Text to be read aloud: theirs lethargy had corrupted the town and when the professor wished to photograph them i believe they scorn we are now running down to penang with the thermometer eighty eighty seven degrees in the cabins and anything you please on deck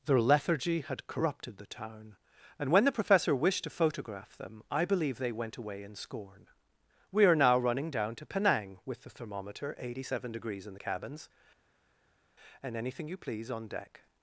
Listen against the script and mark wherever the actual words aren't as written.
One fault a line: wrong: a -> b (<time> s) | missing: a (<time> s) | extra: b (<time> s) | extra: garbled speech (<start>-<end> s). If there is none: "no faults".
wrong: theirs -> their (0.1 s)
extra: went away in (5.3 s)
missing: eighty (10.1 s)